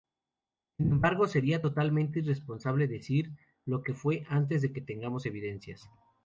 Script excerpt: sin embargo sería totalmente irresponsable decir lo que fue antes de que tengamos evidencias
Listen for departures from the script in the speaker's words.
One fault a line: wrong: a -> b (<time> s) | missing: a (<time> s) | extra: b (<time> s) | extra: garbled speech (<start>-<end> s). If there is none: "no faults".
no faults